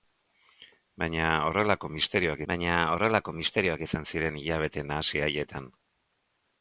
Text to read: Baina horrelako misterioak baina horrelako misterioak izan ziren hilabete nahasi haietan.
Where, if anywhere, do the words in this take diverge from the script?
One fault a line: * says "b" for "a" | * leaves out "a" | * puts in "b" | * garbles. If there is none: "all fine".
all fine